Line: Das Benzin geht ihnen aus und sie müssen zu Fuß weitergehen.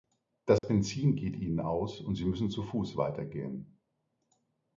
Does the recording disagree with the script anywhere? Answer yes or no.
no